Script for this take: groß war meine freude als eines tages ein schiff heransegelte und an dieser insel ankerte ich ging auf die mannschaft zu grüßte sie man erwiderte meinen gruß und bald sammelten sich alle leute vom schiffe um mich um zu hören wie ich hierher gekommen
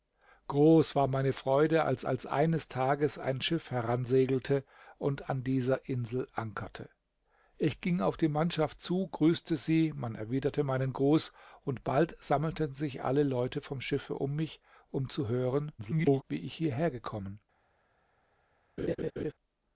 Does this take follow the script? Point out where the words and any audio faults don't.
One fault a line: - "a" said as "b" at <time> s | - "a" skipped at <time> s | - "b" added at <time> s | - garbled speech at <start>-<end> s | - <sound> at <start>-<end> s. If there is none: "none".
- "als" added at 2.0 s
- garbled speech at 15.8-16.2 s
- laugh at 18.8-19.3 s